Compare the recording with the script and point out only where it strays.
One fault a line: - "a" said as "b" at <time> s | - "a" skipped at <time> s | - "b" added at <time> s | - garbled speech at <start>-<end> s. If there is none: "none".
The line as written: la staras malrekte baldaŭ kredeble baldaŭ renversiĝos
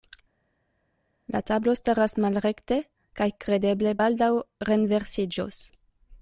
- "tablo" added at 1.5 s
- "baldaŭ" said as "kaj" at 3.2 s